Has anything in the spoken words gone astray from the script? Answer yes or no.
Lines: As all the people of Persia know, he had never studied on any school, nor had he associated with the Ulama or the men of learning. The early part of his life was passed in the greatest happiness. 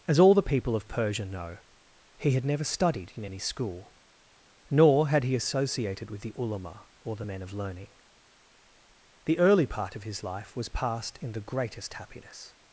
yes